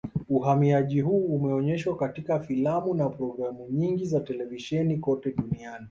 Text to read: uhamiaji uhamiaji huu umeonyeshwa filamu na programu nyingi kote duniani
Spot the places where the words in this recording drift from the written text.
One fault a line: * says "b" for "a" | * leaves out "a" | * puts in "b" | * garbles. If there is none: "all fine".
* leaves out "uhamiaji"
* puts in "katika"
* puts in "za televisheni"